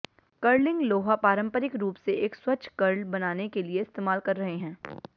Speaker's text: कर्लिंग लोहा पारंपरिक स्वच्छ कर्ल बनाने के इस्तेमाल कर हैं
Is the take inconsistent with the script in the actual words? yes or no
yes